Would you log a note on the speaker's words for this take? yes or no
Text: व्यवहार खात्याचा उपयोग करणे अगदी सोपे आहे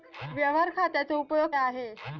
yes